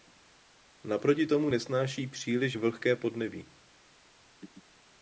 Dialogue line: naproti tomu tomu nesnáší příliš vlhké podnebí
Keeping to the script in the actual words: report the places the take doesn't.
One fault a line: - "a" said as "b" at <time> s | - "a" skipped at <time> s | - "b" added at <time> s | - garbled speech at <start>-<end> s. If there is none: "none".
- "tomu" skipped at 1.5 s